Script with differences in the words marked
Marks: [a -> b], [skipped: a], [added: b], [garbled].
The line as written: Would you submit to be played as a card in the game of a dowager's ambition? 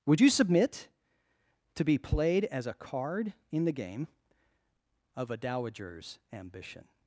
Would you submit to be played as a card in the game of a dowager's ambition?